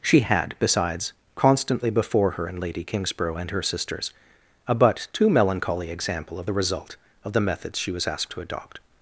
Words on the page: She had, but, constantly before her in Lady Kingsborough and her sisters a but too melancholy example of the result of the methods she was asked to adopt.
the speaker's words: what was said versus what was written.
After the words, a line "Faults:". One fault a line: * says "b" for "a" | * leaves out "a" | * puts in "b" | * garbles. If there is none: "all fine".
She had, besides, constantly before her in Lady Kingsborough and her sisters a but too melancholy example of the result of the methods she was asked to adopt.
Faults:
* says "besides" for "but"